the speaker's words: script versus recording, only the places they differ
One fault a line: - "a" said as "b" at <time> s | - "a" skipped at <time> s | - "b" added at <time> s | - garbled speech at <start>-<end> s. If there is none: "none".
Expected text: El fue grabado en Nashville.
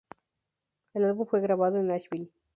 - "álbum" added at 1.1 s